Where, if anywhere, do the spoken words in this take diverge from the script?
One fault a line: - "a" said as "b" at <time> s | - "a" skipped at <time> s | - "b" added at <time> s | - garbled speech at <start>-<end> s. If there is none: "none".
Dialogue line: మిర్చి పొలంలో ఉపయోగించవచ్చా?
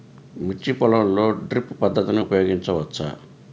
- "డ్రిప్ పద్ధతిని" added at 1.5 s